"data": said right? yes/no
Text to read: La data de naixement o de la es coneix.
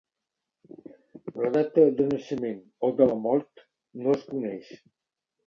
yes